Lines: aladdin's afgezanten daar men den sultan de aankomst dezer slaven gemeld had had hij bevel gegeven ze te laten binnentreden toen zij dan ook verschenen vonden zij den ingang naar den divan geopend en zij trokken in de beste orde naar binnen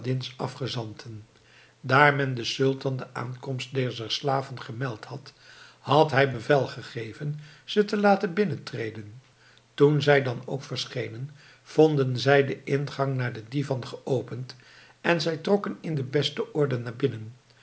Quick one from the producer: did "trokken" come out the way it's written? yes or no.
yes